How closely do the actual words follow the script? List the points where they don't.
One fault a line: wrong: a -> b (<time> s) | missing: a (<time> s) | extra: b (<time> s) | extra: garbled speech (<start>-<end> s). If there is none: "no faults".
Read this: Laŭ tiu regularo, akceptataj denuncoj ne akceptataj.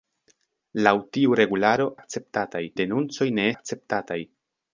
no faults